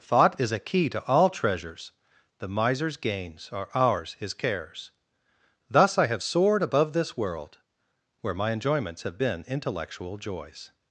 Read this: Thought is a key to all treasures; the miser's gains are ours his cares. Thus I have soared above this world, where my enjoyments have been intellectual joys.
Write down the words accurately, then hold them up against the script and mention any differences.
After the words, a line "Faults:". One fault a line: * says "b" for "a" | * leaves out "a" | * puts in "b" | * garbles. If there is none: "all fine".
Thought is a key to all treasures; the miser's gains are ours his cares. Thus I have soared above this world, where my enjoyments have been intellectual joys.
Faults:
all fine